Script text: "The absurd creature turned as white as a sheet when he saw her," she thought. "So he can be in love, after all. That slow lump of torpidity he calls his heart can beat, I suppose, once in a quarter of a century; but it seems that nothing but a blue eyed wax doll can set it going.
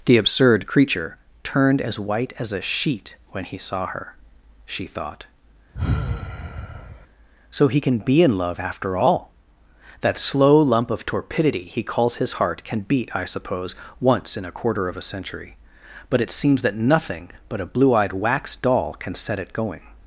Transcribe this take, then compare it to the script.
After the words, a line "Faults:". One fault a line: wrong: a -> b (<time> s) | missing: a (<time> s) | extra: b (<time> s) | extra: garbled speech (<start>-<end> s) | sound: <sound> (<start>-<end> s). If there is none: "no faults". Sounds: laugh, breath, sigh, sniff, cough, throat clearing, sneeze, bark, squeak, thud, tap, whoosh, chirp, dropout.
"The absurd creature turned as white as a sheet when he saw her," she thought. "So he can be in love, after all. That slow lump of torpidity he calls his heart can beat, I suppose, once in a quarter of a century; but it seems that nothing but a blue eyed wax doll can set it going.
Faults:
sound: sigh (5.7-7.1 s)